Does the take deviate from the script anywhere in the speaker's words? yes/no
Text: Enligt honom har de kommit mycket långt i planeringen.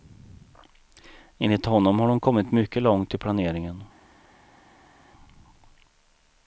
no